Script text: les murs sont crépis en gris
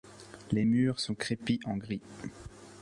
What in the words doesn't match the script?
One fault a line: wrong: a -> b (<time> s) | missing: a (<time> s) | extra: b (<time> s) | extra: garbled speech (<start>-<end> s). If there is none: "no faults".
no faults